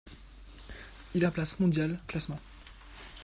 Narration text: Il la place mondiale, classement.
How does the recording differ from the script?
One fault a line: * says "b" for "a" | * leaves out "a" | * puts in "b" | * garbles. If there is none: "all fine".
all fine